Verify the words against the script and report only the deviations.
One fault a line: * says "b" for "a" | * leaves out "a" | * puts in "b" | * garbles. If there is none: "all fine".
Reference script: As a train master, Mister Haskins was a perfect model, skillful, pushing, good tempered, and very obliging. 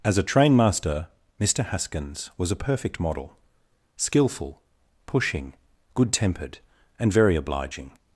all fine